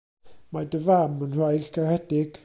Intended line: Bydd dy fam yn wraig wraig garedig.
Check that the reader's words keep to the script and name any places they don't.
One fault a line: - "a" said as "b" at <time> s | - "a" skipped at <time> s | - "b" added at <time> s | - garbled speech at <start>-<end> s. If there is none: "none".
- "Bydd" said as "Mae" at 0.6 s
- "wraig" skipped at 1.7 s